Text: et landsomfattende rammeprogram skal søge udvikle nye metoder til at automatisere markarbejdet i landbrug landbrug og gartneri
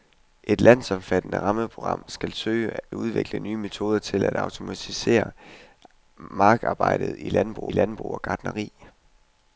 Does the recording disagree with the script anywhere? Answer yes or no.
no